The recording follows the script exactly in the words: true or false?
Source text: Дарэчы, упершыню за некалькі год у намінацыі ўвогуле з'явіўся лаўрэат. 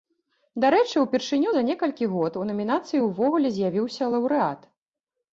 true